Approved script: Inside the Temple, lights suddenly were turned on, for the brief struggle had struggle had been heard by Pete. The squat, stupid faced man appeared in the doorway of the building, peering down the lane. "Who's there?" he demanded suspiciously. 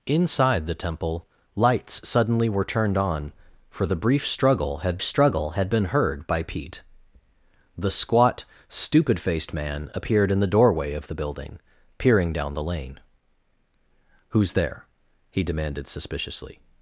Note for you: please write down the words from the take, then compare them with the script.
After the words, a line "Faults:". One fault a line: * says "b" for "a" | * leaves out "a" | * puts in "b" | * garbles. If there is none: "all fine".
Inside the Temple, lights suddenly were turned on, for the brief struggle had struggle had been heard by Pete. The squat, stupid faced man appeared in the doorway of the building, peering down the lane. "Who's there?" he demanded suspiciously.
Faults:
all fine